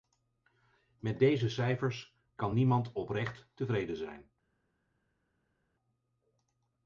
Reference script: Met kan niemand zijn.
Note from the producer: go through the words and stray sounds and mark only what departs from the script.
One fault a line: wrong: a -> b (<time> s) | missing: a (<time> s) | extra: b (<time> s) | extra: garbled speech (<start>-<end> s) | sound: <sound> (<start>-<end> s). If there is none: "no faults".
extra: deze cijfers (1.2 s)
extra: oprecht tevreden (2.9 s)